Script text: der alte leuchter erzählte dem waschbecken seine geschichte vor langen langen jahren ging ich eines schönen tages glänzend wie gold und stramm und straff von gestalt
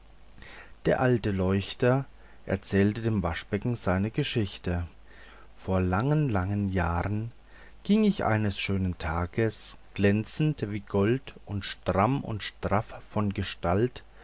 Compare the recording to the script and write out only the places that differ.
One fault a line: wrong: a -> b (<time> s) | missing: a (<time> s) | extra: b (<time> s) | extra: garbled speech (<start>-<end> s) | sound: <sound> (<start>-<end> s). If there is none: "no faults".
no faults